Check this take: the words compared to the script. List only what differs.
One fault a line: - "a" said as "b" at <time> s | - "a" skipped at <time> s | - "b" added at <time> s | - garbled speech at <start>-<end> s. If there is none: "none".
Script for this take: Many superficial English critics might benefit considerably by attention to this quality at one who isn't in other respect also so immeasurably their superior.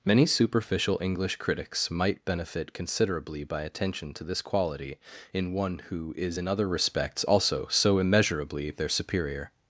- "at" said as "in" at 5.3 s
- "isn't" said as "is" at 6.2 s
- "respect" said as "respects" at 6.7 s